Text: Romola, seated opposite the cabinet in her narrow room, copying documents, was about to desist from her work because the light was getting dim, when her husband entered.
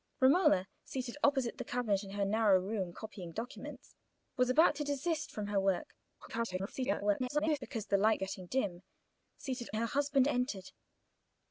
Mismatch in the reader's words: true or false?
true